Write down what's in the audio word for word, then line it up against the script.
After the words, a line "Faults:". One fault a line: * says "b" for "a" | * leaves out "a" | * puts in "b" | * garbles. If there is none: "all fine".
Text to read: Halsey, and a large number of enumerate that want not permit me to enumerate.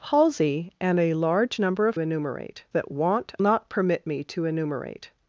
Halsey, and a large number of enumerate that want not permit me to enumerate.
Faults:
all fine